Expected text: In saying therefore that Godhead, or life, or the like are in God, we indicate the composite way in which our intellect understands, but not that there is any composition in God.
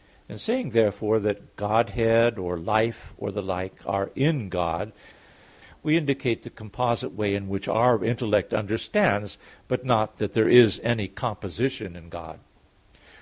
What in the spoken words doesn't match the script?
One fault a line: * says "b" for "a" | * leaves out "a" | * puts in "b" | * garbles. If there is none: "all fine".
all fine